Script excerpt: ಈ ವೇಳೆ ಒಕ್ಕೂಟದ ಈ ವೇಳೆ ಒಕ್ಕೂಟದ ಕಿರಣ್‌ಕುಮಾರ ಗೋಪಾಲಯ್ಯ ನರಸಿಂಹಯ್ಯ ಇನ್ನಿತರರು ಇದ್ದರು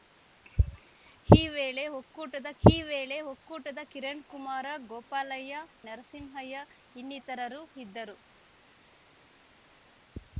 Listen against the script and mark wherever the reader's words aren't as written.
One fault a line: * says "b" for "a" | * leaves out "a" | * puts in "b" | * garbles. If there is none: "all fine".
all fine